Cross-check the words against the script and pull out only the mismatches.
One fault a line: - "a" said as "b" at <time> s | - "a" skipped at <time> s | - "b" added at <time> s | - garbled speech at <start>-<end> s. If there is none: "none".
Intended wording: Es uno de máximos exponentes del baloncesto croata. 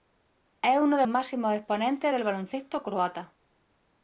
none